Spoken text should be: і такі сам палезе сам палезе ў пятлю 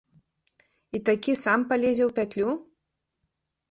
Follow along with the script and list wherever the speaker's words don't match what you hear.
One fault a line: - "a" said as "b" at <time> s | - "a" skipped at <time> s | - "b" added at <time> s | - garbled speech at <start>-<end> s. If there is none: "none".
- "сам палезе" skipped at 2.0 s